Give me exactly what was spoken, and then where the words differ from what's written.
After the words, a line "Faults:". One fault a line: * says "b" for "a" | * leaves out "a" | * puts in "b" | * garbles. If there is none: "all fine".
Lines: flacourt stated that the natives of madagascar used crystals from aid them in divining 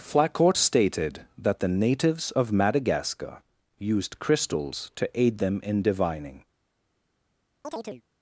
flacourt stated that the natives of madagascar used crystals to aid them in divining
Faults:
* says "to" for "from"